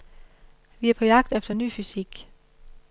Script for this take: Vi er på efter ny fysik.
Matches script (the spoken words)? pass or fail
fail